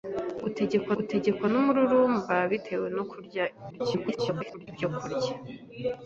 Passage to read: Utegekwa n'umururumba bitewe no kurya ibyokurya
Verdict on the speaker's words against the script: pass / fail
fail